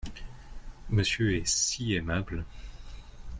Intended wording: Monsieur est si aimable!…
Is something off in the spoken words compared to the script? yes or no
no